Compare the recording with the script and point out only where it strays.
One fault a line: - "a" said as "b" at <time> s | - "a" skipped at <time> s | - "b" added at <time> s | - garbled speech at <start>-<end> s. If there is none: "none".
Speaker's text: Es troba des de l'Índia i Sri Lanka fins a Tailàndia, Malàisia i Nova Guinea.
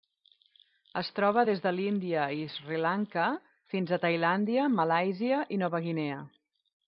none